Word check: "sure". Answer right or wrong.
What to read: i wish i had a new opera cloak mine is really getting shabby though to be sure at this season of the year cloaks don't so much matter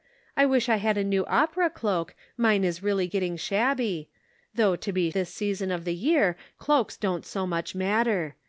wrong